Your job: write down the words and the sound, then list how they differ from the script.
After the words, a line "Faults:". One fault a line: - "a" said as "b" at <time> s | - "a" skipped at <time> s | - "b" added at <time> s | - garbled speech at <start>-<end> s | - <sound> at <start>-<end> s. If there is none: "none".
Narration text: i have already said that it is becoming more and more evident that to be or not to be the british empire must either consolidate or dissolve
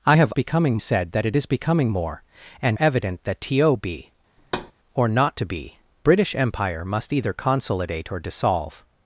i have becoming said that it is becoming more and evident that to be or not to be british empire must either consolidate or dissolve
Faults:
- "already" said as "becoming" at 0.3 s
- "more" skipped at 2.8 s
- thud at 4.4-4.7 s
- "the" skipped at 5.8 s